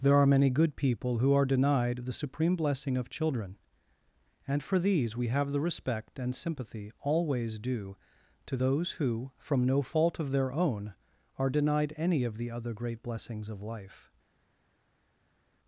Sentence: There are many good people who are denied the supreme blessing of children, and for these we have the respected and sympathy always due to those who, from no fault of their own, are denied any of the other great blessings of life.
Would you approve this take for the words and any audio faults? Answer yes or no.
no